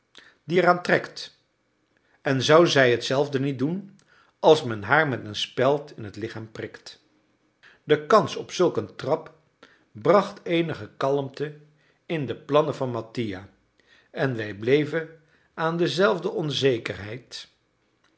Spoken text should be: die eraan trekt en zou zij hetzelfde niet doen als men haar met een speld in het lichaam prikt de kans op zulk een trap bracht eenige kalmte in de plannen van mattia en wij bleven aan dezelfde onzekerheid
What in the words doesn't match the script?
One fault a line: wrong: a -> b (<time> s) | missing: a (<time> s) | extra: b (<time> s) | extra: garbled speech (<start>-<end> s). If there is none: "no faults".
no faults